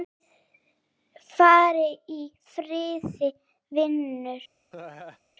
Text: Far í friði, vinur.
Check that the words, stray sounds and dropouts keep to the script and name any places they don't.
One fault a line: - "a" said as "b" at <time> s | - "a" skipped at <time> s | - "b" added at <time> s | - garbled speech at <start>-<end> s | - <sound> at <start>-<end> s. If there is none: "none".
- laugh at 4.7-5.2 s